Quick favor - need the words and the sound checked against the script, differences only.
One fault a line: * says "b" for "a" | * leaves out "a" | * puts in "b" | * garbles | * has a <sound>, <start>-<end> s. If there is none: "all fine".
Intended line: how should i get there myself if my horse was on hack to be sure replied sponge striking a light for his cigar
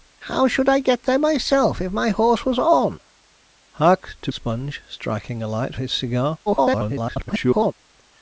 * leaves out "be sure replied"
* leaves out "for"
* garbles